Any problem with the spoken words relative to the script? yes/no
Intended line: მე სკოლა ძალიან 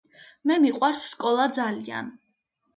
yes